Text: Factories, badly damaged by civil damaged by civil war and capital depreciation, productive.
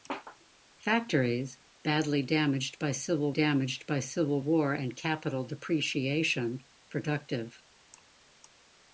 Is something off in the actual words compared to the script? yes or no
no